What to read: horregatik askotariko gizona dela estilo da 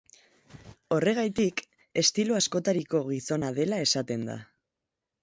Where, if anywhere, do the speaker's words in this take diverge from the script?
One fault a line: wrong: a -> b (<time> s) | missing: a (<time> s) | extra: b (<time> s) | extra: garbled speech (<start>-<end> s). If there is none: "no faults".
extra: estilo (2.0 s)
wrong: estilo -> esaten (3.9 s)